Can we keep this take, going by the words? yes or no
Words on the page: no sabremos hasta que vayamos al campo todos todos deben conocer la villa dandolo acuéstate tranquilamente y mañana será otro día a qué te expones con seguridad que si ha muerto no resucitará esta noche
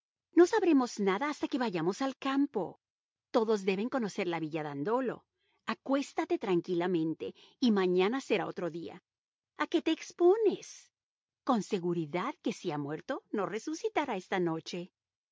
no